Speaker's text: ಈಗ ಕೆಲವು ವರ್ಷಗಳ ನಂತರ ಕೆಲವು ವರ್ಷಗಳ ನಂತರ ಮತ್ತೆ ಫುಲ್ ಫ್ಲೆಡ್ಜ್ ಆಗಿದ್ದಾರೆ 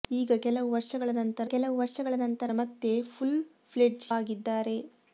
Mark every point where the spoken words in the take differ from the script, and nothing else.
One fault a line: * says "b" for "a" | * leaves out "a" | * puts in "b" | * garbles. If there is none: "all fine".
all fine